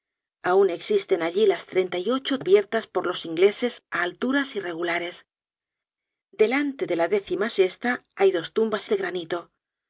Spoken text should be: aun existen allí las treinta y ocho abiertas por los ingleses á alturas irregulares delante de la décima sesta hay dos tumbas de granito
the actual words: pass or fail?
pass